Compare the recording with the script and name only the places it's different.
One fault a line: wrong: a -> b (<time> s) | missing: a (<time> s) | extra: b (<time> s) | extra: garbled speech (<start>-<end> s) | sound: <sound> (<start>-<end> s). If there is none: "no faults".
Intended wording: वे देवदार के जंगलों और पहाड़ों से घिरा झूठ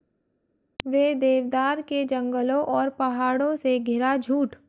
no faults